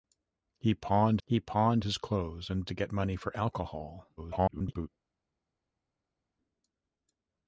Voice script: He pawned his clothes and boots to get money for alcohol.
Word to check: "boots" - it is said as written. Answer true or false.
false